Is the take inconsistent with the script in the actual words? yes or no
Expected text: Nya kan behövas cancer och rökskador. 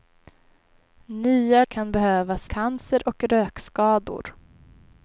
no